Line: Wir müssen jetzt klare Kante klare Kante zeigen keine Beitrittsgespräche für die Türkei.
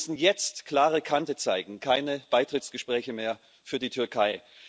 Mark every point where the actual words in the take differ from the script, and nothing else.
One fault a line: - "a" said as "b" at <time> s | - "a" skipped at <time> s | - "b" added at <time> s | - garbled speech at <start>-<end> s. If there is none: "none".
- "klare Kante" skipped at 1.4 s
- "mehr" added at 3.1 s